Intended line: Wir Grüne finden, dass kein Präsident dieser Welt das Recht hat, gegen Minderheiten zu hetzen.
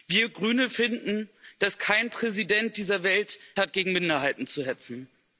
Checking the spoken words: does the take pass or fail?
fail